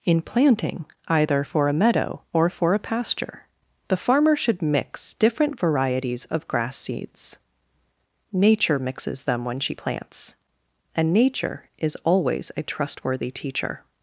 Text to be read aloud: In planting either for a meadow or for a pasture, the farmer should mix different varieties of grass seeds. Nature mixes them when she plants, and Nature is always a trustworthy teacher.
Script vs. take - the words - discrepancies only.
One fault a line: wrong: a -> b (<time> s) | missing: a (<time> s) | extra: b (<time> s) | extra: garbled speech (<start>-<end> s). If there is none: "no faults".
no faults